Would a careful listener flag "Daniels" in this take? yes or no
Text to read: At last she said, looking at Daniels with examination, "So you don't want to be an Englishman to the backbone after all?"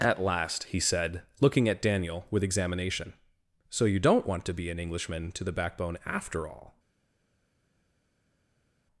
yes